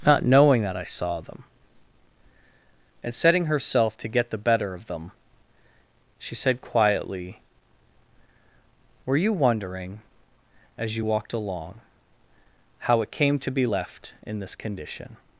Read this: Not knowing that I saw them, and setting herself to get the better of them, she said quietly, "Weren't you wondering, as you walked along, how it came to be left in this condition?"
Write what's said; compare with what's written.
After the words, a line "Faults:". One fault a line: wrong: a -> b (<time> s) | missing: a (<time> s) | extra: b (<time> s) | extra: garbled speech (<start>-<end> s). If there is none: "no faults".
Not knowing that I saw them, and setting herself to get the better of them, she said quietly, "Were you wondering, as you walked along, how it came to be left in this condition?"
Faults:
wrong: Weren't -> Were (9.1 s)